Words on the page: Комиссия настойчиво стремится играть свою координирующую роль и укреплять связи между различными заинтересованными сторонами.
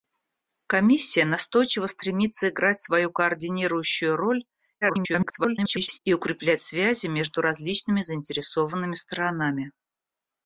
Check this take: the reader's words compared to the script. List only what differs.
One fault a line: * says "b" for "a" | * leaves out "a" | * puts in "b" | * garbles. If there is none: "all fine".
* garbles